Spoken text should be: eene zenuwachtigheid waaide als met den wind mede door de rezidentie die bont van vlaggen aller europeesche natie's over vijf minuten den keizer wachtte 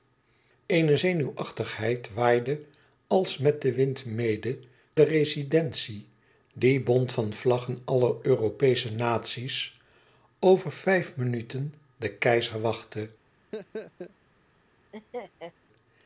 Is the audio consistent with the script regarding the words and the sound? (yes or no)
no